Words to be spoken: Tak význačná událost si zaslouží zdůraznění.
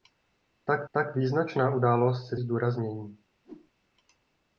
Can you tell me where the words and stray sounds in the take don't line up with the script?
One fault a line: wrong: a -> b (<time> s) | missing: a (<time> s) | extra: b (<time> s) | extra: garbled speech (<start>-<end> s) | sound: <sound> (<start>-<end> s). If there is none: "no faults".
extra: tak (0.9 s)
missing: zaslouží (2.4 s)
sound: whoosh (3.4-3.7 s)